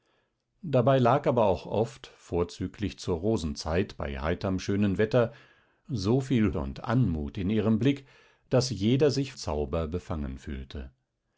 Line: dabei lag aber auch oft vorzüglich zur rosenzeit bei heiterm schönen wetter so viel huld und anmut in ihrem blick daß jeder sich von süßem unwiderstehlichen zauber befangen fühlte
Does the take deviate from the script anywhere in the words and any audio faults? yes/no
yes